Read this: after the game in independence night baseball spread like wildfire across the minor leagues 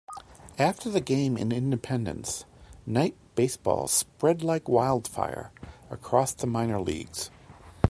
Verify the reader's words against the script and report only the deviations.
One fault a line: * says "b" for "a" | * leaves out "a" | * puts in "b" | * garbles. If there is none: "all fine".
all fine